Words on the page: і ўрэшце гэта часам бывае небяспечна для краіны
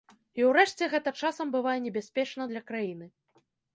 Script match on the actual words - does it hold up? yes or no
yes